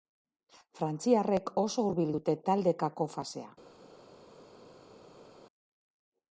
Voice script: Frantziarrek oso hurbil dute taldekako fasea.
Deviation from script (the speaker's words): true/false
false